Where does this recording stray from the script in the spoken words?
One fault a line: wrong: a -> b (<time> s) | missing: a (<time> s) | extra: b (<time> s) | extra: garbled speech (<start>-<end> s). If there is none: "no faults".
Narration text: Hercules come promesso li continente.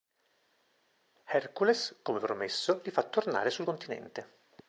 extra: fa tornare sul (2.9 s)